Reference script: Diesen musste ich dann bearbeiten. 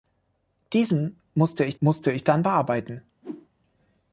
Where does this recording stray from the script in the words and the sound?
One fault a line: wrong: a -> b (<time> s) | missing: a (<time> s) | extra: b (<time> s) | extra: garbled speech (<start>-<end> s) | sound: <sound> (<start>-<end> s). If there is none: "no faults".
extra: musste ich (1.8 s)
sound: whoosh (3.2-3.5 s)